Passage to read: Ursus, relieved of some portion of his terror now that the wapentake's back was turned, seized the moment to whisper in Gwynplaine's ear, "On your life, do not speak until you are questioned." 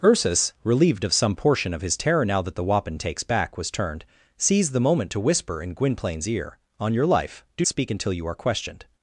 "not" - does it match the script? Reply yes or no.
no